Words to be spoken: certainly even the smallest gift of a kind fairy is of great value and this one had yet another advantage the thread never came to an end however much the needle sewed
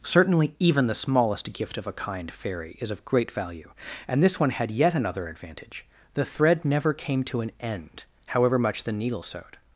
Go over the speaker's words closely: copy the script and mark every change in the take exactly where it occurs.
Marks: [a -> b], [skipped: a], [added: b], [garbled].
certainly even the smallest gift of a kind fairy is of great value and this one had yet another advantage the thread never came to an end however much the needle sewed